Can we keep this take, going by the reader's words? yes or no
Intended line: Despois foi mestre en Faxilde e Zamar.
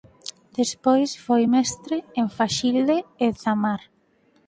yes